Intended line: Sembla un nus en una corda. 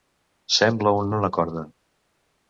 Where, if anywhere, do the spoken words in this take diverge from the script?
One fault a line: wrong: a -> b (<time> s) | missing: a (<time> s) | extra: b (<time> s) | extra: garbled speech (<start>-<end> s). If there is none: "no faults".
missing: nus (1.1 s)